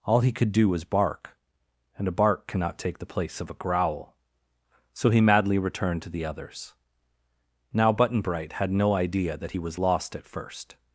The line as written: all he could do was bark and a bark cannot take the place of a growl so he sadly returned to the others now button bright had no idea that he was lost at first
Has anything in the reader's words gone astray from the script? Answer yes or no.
yes